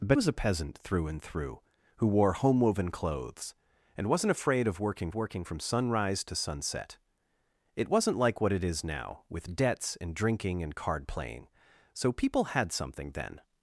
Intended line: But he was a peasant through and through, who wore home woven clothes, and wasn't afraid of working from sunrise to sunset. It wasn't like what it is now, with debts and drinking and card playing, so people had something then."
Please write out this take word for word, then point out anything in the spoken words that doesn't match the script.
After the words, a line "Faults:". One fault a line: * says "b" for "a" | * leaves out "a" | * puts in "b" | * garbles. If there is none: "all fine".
But was a peasant through and through, who wore home woven clothes, and wasn't afraid of working working from sunrise to sunset. It wasn't like what it is now, with debts and drinking and card playing, so people had something then."
Faults:
* leaves out "he"
* puts in "working"